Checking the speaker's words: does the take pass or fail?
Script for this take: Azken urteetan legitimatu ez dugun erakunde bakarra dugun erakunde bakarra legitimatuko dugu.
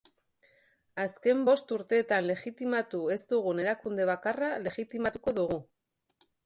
fail